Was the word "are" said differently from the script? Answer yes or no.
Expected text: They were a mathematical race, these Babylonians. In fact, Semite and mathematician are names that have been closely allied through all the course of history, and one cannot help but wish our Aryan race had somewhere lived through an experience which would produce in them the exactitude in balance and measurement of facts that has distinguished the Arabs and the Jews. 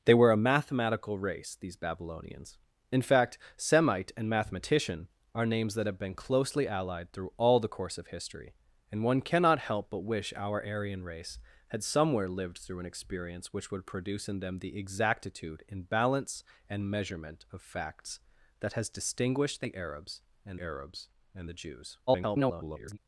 no